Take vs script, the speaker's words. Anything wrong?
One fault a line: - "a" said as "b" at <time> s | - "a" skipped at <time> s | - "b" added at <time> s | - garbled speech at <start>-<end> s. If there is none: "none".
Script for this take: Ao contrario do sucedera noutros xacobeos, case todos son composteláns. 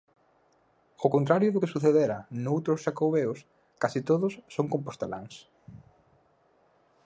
- "que" added at 1.6 s